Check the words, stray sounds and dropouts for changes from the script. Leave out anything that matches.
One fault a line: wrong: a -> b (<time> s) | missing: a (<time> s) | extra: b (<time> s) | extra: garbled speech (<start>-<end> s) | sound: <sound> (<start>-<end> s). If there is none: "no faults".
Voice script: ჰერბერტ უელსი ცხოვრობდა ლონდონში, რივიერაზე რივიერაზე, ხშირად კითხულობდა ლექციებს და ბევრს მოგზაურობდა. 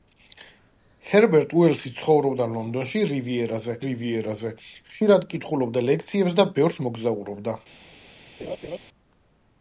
sound: laugh (8.4-8.8 s)